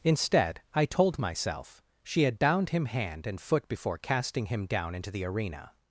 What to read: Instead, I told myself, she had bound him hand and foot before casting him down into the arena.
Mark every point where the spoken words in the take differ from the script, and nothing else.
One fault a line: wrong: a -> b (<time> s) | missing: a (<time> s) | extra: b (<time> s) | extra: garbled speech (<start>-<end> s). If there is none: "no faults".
no faults